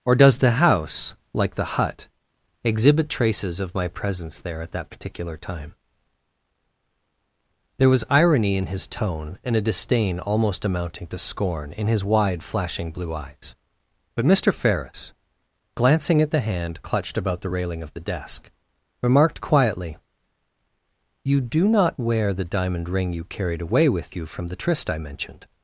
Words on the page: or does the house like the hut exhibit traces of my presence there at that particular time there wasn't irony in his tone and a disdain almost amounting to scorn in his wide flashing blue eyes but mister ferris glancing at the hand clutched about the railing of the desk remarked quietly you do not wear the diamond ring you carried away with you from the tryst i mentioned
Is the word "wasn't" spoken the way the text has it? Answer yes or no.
no